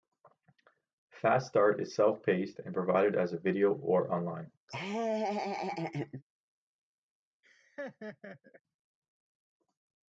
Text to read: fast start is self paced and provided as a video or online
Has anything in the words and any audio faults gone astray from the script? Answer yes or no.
yes